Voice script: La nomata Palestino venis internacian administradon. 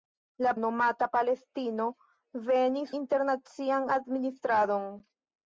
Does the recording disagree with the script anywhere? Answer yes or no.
no